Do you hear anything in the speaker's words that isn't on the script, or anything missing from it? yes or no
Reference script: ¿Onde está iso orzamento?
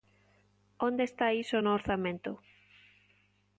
yes